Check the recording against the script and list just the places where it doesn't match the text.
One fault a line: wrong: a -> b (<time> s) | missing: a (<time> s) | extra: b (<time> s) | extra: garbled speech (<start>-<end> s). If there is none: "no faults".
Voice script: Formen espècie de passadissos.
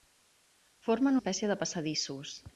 no faults